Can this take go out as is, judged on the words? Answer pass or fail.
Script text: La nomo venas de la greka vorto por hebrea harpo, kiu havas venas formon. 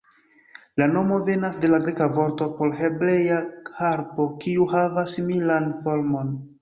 fail